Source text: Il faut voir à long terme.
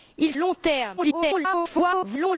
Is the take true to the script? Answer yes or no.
no